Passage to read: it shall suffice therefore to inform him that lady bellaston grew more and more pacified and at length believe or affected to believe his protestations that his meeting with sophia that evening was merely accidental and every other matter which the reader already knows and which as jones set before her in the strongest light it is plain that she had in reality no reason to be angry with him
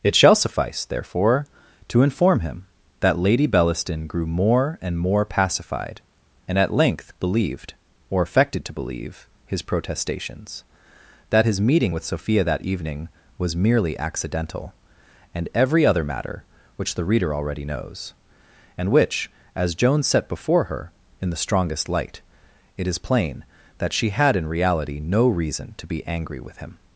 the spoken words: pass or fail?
fail